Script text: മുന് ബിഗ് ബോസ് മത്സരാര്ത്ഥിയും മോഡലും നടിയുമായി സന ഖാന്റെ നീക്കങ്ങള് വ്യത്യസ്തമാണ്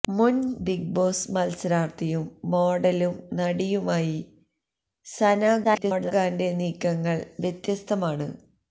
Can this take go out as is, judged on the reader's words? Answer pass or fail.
fail